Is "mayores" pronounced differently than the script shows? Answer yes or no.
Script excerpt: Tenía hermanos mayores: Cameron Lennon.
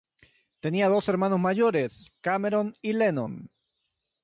no